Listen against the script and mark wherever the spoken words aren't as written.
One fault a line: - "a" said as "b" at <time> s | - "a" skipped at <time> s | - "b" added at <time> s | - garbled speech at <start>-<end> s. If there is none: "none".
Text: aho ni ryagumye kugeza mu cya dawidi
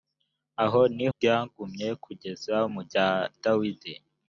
none